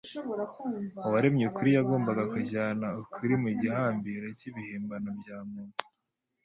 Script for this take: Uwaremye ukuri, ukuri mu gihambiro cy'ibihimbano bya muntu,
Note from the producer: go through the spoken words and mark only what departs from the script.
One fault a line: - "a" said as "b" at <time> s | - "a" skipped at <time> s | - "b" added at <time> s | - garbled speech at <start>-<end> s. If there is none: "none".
- "yagombaga kujyana" added at 1.8 s